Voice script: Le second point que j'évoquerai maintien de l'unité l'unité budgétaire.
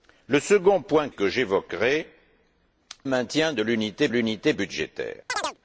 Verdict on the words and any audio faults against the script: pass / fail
fail